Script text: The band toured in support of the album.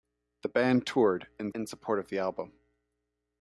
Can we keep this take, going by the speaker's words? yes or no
no